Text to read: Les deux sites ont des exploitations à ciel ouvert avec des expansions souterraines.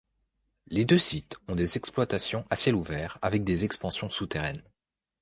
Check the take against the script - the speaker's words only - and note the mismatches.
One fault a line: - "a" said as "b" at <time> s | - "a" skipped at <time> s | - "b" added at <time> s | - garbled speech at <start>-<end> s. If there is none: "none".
none